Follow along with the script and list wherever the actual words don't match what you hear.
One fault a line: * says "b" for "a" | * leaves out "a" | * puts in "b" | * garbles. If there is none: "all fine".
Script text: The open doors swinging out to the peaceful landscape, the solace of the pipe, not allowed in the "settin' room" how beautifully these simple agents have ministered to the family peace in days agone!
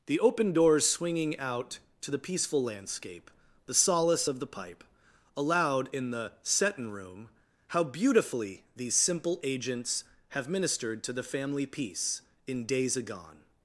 * leaves out "not"